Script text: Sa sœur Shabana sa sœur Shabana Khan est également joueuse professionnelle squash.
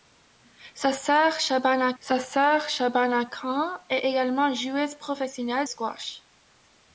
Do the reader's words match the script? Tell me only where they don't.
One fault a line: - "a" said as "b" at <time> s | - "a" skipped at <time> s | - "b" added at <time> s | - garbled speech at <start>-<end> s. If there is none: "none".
none